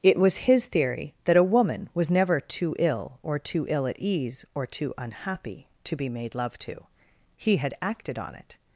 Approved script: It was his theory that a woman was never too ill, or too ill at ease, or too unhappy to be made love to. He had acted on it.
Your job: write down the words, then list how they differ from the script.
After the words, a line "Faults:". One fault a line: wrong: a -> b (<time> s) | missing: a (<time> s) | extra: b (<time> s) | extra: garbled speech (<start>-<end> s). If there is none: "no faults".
It was his theory that a woman was never too ill, or too ill at ease, or too unhappy to be made love to. He had acted on it.
Faults:
no faults